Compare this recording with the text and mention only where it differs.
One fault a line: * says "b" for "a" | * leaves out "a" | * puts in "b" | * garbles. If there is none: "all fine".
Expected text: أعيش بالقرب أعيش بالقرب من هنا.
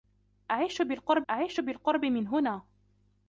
all fine